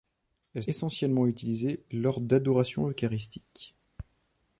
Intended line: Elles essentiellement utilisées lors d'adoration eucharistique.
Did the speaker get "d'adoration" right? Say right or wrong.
right